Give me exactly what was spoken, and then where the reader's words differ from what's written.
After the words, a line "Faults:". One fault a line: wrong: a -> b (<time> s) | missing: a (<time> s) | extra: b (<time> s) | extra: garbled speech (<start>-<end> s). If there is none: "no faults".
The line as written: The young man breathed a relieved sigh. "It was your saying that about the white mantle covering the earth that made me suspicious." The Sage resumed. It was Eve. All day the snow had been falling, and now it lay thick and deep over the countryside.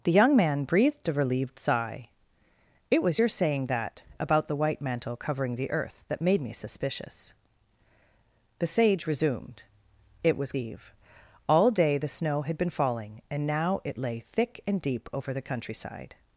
The young man breathed a relieved sigh. "It was your saying that about the white mantle covering the earth that made me suspicious." The Sage resumed. It was Eve. All day the snow had been falling, and now it lay thick and deep over the countryside.
Faults:
no faults